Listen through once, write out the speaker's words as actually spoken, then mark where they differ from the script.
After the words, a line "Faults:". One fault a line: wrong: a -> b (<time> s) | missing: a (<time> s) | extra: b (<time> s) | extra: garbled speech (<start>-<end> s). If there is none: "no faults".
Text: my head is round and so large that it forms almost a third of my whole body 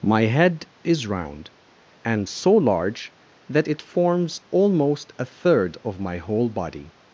my head is round and so large that it forms almost a third of my whole body
Faults:
no faults